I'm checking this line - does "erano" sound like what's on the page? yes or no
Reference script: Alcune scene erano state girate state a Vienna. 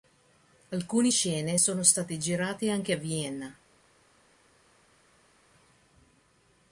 no